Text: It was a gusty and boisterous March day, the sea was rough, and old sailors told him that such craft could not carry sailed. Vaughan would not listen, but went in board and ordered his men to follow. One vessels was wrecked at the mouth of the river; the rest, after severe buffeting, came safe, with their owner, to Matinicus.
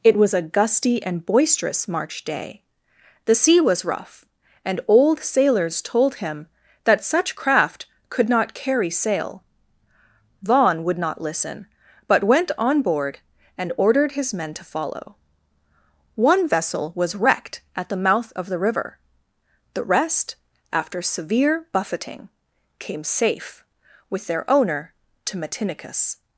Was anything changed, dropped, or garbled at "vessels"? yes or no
yes